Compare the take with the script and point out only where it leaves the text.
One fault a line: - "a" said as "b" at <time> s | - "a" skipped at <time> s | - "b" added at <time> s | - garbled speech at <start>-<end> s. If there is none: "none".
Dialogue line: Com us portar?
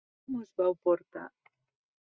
- "vau" added at 0.6 s